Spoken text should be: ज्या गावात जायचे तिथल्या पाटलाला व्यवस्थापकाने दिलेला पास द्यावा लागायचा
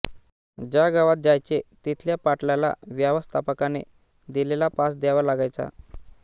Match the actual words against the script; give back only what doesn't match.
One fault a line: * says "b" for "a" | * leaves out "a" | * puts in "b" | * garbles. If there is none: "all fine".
all fine